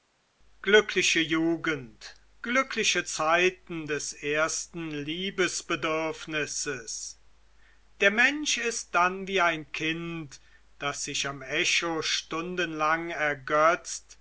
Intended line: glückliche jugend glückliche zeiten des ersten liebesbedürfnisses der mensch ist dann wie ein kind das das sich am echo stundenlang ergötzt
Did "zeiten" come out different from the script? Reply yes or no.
no